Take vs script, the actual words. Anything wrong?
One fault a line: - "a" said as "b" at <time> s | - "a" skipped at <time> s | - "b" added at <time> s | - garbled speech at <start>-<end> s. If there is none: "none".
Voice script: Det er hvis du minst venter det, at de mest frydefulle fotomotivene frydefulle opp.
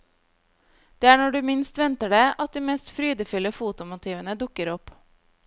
- "hvis" said as "når" at 1.2 s
- "frydefulle" said as "dukker" at 4.5 s